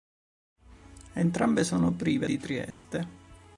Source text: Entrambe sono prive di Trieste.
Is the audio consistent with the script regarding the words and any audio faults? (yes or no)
no